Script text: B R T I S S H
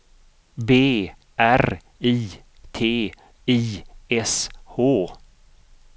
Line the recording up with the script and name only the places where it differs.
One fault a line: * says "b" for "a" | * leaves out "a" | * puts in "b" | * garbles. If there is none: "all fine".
* puts in "I"
* leaves out "S"